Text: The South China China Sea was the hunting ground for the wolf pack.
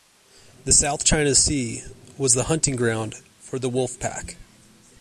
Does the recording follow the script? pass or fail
fail